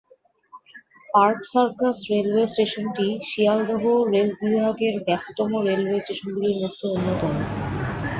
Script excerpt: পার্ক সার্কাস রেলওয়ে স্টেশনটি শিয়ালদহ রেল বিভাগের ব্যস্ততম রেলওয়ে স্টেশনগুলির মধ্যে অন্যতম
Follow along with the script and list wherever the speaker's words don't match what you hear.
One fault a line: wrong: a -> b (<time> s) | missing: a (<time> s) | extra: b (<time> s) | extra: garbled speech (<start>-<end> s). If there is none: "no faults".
no faults